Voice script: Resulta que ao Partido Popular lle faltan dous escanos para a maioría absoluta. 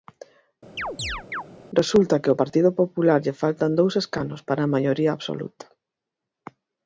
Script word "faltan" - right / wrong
right